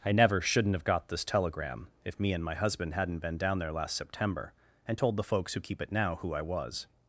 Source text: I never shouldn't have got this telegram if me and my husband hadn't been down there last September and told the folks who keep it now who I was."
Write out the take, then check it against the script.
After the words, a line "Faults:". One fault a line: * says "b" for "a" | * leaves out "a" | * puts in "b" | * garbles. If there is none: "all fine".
I never shouldn't have got this telegram if me and my husband hadn't been down there last September and told the folks who keep it now who I was."
Faults:
all fine